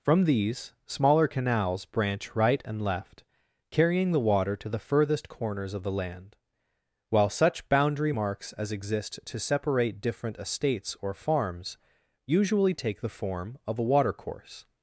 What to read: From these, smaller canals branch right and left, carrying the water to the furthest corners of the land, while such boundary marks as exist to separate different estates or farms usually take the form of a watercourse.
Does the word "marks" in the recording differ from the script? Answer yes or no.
no